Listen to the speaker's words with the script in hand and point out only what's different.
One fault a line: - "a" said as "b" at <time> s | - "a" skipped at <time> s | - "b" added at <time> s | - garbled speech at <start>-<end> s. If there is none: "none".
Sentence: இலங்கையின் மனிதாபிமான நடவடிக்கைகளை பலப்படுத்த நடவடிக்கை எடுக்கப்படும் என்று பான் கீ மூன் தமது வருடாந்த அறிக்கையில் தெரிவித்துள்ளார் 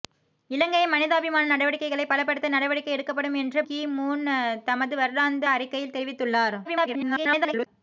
- "பான்" skipped at 3.6 s
- garbled speech at 6.6-7.7 s